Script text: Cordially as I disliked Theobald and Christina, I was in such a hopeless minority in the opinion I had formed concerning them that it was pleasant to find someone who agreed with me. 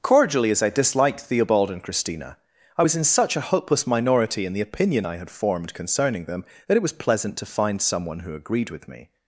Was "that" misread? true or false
false